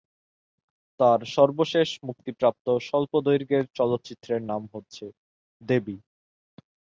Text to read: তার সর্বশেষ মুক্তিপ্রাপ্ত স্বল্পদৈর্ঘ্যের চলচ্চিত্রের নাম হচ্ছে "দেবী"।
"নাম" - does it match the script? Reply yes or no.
yes